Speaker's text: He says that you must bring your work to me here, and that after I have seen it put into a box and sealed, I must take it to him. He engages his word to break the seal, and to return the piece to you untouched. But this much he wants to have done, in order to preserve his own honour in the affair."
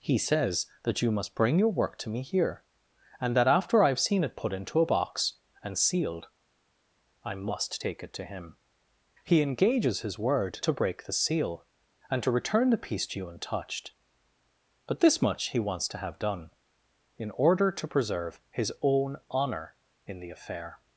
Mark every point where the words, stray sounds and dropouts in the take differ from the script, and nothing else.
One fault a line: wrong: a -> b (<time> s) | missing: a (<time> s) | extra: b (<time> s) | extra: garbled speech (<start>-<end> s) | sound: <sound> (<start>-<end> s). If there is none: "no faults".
no faults